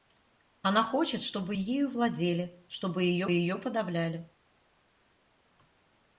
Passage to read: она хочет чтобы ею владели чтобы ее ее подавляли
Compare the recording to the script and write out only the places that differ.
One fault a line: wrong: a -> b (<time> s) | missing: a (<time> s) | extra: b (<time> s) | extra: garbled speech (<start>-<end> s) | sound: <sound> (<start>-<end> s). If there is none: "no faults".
no faults